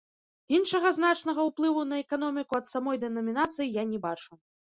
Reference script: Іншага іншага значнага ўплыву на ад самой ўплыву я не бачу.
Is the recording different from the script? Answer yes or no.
yes